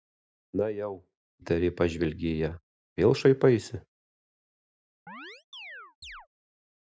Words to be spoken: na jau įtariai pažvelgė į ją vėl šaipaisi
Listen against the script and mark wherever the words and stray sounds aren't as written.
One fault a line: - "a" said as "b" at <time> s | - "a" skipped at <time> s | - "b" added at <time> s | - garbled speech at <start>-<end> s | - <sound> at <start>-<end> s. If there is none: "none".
- chirp at 5.1-6.3 s